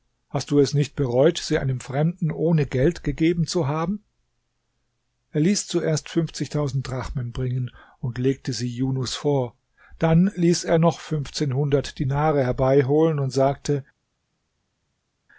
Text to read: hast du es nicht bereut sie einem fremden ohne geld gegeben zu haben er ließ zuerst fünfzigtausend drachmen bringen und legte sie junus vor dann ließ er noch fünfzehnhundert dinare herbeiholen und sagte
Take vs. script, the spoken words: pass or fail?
pass